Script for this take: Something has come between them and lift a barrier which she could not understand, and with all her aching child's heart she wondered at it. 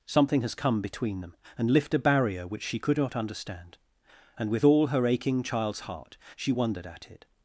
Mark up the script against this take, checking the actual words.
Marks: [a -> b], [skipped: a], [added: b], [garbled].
Something has come between them and lift a barrier which she could not understand, and with all her aching child's heart she wondered at it.